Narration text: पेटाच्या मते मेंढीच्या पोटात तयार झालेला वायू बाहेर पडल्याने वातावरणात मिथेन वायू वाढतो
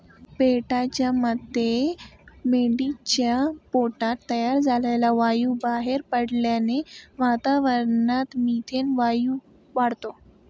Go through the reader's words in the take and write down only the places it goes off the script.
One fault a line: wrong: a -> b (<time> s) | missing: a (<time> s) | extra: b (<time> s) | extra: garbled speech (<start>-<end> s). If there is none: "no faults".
no faults